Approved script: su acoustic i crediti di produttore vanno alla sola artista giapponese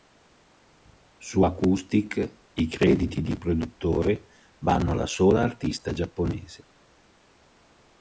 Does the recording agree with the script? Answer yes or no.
yes